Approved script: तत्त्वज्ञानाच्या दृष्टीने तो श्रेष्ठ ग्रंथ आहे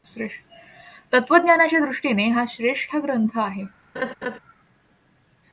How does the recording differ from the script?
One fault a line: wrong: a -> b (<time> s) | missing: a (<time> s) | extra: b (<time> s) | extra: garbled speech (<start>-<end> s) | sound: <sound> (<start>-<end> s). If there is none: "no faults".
wrong: तो -> हा (2.3 s)
sound: laugh (4.0-4.4 s)